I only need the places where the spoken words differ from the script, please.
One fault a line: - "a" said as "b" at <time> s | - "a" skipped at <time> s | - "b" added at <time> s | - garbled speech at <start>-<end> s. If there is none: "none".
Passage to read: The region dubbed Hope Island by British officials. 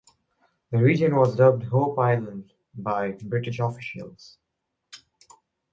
- "was" added at 1.1 s